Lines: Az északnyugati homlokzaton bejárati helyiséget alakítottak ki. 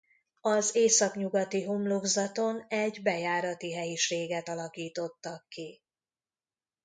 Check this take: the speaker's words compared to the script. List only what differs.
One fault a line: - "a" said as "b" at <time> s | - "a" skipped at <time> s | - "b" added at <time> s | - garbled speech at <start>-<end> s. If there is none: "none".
- "egy" added at 2.7 s